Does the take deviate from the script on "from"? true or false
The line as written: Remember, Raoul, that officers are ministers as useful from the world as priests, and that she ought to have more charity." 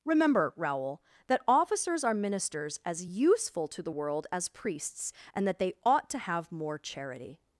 true